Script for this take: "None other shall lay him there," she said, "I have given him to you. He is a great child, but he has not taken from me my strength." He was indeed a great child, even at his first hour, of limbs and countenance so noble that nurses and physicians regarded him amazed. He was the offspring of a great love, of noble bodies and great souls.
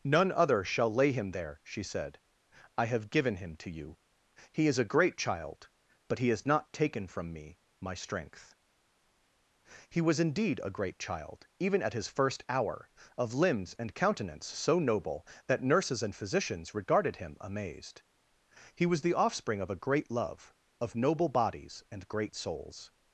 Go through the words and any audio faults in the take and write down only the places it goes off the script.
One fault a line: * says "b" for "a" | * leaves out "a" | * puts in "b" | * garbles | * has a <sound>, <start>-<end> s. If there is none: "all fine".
all fine